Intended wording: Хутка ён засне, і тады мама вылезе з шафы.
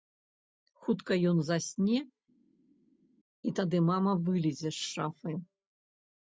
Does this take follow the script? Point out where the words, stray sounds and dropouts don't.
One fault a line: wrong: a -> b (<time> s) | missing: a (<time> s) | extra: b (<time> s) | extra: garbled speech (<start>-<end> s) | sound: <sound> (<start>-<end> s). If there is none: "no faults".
no faults